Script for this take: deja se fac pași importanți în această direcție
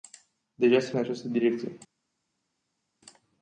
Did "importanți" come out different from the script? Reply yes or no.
yes